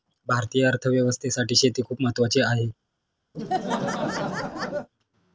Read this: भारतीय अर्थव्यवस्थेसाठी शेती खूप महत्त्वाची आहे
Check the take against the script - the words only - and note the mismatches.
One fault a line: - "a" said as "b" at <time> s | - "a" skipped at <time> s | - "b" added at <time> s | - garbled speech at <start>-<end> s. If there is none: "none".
none